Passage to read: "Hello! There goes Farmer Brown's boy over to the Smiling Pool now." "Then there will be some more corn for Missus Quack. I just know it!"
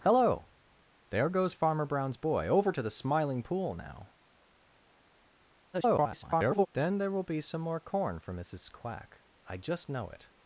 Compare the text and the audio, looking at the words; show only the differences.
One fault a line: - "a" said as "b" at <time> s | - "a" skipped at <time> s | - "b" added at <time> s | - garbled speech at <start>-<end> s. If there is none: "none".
- garbled speech at 5.7-6.7 s